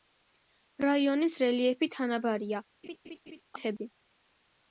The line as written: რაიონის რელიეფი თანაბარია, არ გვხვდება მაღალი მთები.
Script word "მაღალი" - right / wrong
wrong